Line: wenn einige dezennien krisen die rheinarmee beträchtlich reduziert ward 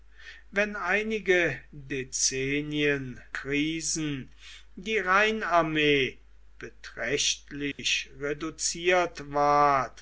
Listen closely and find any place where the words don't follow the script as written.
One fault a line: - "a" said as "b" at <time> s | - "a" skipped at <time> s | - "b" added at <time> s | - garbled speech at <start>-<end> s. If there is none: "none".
none